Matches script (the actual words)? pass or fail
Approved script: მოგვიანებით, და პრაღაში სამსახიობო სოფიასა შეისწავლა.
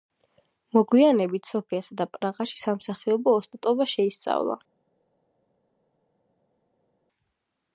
fail